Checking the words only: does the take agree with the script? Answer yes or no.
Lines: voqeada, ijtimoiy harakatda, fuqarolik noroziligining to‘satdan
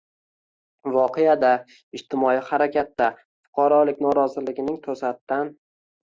yes